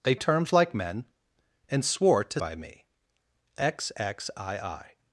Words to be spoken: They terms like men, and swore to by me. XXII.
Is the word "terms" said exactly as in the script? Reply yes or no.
yes